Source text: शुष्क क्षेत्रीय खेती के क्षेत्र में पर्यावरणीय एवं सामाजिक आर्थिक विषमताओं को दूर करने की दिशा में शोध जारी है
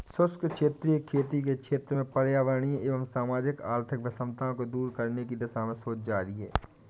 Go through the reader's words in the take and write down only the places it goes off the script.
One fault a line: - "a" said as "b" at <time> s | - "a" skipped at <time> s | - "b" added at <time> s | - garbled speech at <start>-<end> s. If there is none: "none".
none